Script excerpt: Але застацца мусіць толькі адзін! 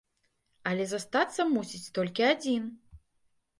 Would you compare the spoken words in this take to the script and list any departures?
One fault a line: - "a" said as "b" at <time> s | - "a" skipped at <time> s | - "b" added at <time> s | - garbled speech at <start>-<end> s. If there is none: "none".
none